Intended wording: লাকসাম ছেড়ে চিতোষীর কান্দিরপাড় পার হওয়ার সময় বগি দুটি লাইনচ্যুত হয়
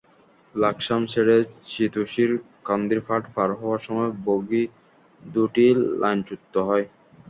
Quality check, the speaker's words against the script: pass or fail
pass